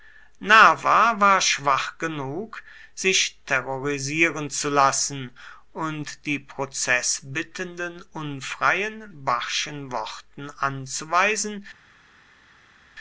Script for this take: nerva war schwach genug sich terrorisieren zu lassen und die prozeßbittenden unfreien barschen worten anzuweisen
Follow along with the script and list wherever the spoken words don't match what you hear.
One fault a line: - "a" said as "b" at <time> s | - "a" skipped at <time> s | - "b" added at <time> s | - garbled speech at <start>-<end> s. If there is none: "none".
none